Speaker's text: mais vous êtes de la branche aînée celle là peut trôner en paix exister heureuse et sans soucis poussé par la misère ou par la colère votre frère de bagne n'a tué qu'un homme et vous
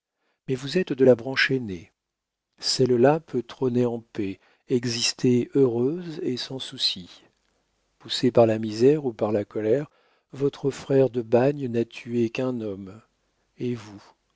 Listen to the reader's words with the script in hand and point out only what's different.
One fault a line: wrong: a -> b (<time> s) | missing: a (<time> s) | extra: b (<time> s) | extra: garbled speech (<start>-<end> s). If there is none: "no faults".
no faults